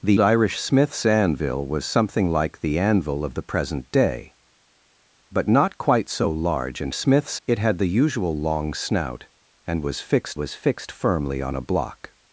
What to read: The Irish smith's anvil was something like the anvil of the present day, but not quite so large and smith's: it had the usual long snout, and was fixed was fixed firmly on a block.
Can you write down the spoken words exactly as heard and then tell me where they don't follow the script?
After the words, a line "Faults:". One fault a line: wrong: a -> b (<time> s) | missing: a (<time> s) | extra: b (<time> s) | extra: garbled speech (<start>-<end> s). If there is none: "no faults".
The Irish smith's anvil was something like the anvil of the present day, but not quite so large and smith's: it had the usual long snout, and was fixed was fixed firmly on a block.
Faults:
no faults